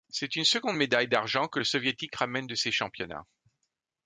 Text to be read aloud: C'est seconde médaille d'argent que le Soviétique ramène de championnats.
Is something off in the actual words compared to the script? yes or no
yes